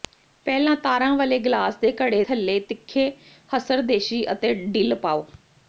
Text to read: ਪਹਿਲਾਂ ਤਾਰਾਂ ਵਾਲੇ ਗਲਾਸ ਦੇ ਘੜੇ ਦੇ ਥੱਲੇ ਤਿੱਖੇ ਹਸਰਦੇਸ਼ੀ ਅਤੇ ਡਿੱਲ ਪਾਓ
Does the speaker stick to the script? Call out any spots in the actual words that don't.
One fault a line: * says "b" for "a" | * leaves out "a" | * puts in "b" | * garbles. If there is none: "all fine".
* leaves out "ਦੇ"